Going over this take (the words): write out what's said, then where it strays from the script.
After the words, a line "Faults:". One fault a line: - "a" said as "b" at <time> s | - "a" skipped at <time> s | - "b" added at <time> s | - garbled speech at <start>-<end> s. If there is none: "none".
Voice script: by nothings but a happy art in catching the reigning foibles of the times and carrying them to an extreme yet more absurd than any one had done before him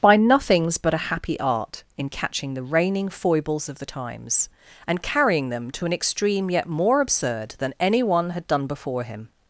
by nothings but a happy art in catching the reigning foibles of the times and carrying them to an extreme yet more absurd than any one had done before him
Faults:
none